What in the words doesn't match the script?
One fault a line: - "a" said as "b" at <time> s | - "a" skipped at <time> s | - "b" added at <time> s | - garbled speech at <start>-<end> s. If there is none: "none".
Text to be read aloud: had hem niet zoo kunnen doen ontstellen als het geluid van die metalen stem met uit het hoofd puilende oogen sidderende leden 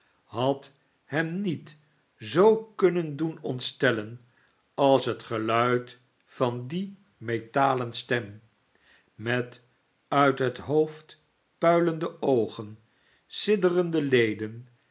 none